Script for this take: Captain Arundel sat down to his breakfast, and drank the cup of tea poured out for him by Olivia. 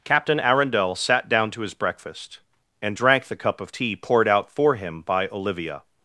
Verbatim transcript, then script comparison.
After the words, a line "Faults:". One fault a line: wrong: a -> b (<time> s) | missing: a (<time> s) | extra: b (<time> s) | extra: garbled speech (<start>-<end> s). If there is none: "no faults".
Captain Arundel sat down to his breakfast, and drank the cup of tea poured out for him by Olivia.
Faults:
no faults